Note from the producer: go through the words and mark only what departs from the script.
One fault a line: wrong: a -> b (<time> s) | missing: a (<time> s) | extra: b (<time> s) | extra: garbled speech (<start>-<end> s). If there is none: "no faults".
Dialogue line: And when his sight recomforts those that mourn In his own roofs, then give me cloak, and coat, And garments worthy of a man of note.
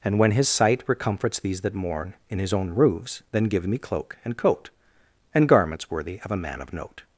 wrong: those -> these (1.4 s)